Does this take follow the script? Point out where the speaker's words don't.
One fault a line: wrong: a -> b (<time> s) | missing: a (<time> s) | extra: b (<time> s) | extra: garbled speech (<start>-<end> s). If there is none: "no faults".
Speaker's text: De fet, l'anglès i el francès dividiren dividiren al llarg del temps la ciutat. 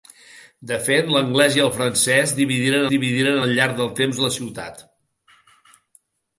no faults